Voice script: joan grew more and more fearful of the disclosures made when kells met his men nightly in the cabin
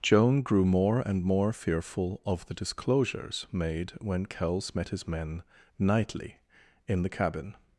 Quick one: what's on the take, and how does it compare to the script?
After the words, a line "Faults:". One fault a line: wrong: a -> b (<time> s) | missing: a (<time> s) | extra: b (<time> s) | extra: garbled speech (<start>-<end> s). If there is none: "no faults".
joan grew more and more fearful of the disclosures made when kells met his men nightly in the cabin
Faults:
no faults